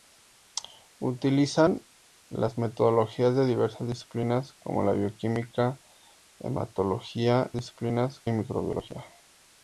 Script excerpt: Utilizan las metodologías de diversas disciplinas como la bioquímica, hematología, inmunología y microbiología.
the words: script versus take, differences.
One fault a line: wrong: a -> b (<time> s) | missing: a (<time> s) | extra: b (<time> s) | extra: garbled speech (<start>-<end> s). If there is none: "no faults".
wrong: inmunología -> disciplinas (7.5 s)